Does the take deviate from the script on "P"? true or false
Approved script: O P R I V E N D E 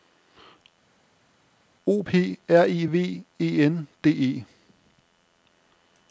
false